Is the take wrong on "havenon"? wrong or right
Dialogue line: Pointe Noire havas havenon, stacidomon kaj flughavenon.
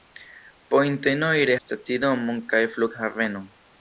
wrong